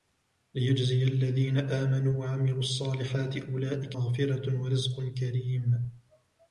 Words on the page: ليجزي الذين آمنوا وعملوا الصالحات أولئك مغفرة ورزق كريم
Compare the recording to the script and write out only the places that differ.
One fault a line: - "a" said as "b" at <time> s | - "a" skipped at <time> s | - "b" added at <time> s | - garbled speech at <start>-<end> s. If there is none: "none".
none